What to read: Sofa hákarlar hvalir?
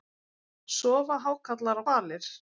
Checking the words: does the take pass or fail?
pass